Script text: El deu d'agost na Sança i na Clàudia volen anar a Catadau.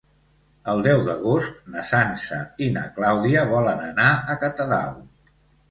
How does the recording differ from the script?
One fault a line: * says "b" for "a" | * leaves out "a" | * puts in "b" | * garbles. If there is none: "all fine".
all fine